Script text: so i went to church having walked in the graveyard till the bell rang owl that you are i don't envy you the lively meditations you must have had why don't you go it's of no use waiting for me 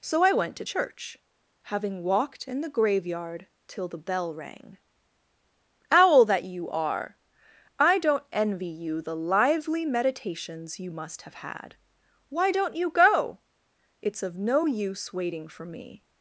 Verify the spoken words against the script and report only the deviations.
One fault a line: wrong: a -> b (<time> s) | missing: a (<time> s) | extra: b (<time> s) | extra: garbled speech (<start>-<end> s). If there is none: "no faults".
no faults